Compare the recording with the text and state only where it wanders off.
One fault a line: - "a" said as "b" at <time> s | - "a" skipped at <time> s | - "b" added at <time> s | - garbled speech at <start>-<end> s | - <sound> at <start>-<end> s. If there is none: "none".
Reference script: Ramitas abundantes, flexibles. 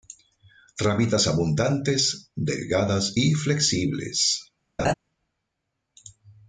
- "delgadas y" added at 2.3 s
- laugh at 4.8-4.9 s